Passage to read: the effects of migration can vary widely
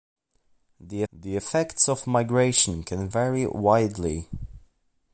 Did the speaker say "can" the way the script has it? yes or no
yes